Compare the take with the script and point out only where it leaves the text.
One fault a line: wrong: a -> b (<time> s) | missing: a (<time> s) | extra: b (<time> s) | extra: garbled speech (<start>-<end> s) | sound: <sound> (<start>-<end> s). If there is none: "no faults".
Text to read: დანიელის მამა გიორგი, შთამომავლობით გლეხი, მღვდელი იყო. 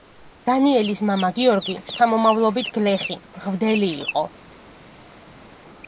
no faults